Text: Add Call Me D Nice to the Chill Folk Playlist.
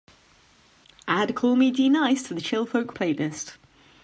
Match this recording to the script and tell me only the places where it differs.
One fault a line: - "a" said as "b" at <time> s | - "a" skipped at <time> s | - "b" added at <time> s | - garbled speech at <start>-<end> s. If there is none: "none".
none